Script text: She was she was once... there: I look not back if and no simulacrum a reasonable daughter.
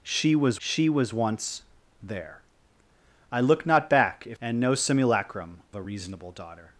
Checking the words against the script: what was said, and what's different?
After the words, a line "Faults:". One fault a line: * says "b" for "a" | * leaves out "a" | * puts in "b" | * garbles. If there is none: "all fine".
She was she was once... there: I look not back if and no simulacrum a reasonable daughter.
Faults:
all fine